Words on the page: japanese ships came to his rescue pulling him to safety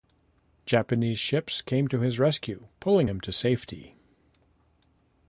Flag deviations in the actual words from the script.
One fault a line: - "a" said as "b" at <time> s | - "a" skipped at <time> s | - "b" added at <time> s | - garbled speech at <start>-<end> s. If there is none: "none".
none